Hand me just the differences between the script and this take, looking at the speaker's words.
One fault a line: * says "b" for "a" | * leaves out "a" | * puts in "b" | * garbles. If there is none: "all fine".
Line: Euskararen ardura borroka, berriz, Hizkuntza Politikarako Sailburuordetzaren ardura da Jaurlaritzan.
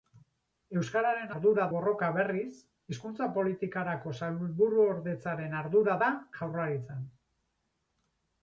all fine